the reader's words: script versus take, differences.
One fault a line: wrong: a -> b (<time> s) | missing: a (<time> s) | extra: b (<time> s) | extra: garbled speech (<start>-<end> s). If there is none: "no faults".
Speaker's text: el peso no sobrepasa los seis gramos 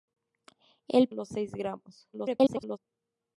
missing: peso no sobrepasa (1.1 s)
extra: garbled speech (2.1-2.8 s)